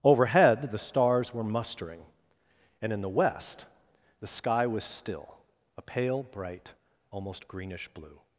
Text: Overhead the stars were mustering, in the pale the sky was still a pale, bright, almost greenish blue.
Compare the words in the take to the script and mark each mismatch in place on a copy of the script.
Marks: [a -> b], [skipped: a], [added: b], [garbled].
Overhead the stars were mustering, [added: and] in the [pale -> west] the sky was still a pale, bright, almost greenish blue.